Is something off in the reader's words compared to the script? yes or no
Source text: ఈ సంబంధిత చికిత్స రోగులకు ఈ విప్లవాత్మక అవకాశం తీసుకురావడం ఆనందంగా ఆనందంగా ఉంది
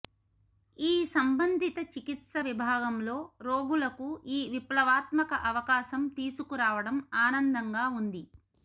yes